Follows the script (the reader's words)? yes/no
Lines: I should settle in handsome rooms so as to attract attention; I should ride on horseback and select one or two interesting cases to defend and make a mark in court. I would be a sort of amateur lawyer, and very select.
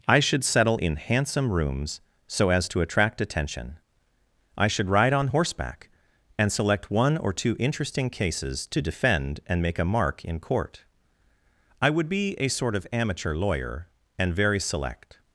yes